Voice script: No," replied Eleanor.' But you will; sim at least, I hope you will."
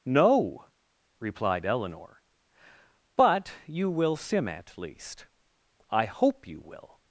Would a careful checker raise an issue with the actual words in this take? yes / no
no